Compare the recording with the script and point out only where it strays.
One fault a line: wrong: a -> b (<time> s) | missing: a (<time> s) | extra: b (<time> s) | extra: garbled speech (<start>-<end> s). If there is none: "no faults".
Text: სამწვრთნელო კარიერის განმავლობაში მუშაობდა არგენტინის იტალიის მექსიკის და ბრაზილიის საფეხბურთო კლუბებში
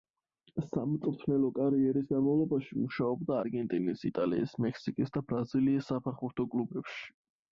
no faults